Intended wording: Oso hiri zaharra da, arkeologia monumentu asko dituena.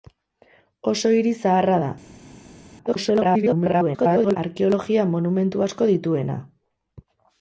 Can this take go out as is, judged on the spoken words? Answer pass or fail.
fail